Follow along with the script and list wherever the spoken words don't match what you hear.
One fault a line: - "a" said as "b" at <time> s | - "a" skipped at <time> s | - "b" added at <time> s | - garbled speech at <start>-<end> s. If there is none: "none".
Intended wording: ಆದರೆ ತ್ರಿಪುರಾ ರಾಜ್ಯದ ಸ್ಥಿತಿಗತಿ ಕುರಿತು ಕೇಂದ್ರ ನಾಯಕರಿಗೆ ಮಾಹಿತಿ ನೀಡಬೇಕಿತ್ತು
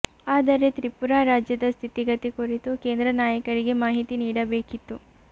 none